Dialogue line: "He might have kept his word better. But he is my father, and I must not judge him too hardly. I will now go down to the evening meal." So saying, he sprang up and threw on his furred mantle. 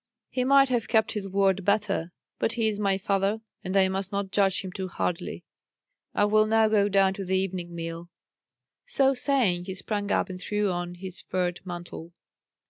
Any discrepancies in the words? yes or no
no